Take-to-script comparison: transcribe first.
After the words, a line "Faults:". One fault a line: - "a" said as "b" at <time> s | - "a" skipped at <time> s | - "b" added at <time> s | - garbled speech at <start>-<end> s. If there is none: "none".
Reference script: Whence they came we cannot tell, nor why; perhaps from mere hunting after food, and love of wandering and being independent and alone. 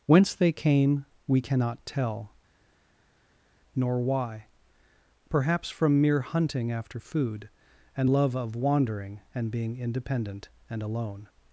Whence they came we cannot tell, nor why; perhaps from mere hunting after food, and love of wandering and being independent and alone.
Faults:
none